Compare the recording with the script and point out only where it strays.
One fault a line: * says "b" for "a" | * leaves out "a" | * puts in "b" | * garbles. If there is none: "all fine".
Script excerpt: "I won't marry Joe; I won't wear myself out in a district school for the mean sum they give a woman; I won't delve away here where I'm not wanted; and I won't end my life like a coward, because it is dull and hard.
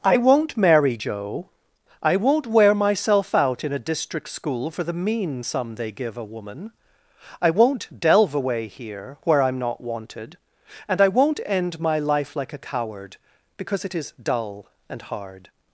all fine